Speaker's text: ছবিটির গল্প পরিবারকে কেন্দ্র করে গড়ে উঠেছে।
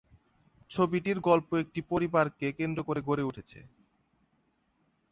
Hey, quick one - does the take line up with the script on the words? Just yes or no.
no